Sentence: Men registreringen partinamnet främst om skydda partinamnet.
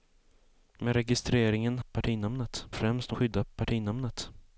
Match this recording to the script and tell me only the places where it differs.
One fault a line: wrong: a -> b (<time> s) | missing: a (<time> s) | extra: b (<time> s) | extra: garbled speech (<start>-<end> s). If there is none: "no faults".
no faults